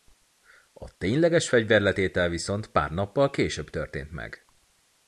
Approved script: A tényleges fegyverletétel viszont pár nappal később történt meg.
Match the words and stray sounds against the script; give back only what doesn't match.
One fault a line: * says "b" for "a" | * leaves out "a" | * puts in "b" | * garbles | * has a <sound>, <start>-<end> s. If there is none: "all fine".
all fine